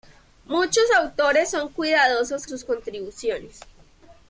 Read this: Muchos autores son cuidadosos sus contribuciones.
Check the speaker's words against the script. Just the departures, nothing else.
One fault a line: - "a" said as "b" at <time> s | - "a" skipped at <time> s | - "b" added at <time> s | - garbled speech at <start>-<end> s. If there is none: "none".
none